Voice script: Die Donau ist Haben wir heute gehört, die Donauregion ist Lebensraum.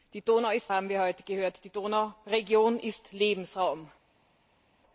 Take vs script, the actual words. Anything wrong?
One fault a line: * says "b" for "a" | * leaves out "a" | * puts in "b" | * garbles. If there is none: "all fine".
all fine